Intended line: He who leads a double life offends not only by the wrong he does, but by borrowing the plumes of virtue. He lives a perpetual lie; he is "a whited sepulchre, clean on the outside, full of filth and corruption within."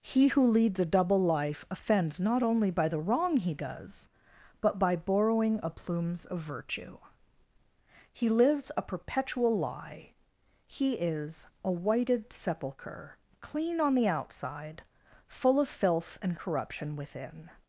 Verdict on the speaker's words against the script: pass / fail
fail